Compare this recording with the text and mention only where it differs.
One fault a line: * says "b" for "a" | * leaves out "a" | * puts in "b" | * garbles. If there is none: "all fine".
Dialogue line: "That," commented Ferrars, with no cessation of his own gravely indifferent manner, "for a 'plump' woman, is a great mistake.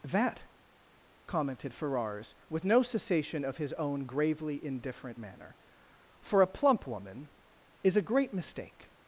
all fine